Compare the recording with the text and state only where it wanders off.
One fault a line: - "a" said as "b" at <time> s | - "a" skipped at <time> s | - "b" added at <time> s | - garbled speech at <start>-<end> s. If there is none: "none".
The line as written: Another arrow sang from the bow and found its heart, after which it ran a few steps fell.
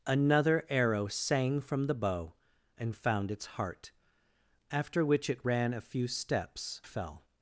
none